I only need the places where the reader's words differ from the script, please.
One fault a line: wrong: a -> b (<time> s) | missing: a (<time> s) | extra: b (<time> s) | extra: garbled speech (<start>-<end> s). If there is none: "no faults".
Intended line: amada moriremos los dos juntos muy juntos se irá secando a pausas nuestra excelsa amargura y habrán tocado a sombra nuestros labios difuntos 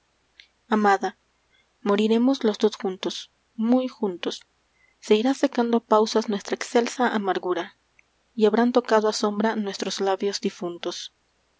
no faults